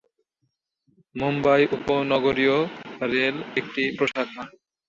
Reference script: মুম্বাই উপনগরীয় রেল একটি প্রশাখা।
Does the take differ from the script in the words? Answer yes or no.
no